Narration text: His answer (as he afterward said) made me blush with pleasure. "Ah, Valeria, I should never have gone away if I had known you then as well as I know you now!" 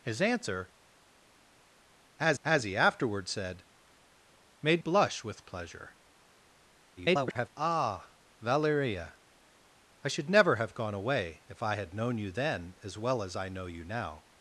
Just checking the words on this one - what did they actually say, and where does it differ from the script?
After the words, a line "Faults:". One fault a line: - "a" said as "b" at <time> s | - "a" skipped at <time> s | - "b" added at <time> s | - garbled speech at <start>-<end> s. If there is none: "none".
His answer (as as he afterward said) made blush with pleasure. [garbled] "Ah, Valeria, I should never have gone away if I had known you then as well as I know you now!"
Faults:
- "as" added at 2.4 s
- "me" skipped at 4.8 s
- garbled speech at 7.0-7.5 s